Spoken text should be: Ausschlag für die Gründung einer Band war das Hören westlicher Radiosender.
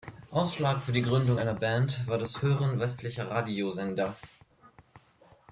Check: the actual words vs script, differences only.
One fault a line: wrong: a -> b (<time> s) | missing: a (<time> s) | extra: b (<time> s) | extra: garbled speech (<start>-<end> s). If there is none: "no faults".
no faults